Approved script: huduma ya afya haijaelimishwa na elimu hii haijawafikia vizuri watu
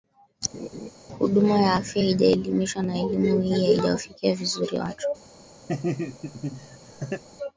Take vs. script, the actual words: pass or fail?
pass